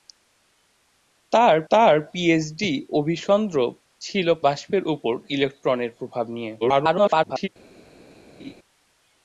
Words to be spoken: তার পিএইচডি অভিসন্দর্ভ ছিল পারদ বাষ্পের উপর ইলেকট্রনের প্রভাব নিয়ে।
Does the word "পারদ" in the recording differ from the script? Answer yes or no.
yes